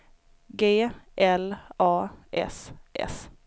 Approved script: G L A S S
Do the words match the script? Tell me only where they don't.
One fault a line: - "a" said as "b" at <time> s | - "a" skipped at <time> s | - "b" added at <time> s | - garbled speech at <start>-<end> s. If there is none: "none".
none